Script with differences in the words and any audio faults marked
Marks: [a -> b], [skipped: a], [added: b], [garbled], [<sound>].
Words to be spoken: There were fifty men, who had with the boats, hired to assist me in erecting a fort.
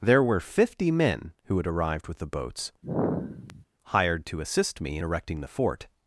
There were fifty men, who had [added: arrived] with the boats, [sigh] hired to assist me in erecting [a -> the] fort.